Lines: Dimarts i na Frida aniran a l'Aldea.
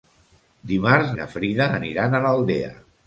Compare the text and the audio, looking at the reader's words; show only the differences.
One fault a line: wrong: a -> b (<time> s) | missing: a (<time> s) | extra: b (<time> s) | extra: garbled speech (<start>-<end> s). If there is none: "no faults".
no faults